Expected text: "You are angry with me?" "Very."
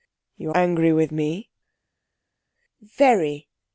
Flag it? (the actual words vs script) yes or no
yes